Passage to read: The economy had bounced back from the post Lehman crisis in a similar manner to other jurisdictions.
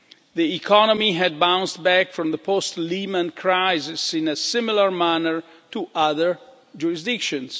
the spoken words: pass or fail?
pass